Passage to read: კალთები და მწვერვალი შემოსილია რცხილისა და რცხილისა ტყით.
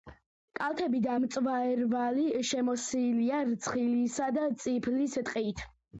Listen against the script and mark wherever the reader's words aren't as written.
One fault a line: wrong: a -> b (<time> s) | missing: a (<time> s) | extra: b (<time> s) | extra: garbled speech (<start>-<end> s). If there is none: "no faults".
wrong: რცხილისა -> წიფლის (4.7 s)